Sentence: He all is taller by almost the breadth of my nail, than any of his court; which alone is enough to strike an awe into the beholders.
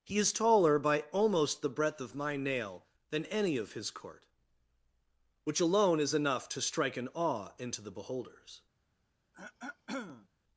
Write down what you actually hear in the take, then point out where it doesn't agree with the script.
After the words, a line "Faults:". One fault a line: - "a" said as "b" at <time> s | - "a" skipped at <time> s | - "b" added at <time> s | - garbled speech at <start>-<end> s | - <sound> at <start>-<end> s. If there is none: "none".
He is taller by almost the breadth of my nail, than any of his court; which alone is enough to strike an awe into the beholders.
Faults:
- "all" skipped at 0.2 s
- throat clearing at 9.3-10.3 s